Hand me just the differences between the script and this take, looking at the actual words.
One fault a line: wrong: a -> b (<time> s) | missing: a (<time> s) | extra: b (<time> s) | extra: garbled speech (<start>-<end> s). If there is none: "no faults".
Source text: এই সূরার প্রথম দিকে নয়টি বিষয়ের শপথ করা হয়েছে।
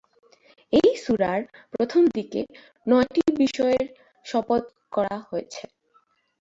no faults